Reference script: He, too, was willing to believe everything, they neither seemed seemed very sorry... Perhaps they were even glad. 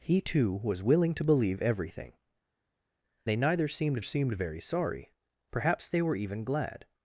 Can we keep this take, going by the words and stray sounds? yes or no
yes